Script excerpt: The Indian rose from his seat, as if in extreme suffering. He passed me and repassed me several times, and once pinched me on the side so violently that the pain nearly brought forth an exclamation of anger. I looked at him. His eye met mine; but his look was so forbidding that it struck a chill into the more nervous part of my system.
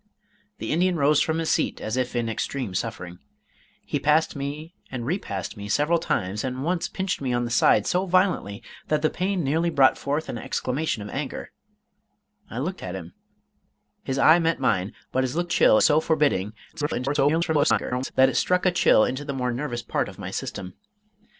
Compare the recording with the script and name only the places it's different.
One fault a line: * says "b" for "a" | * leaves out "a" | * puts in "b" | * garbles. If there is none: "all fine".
* says "chill" for "was"
* garbles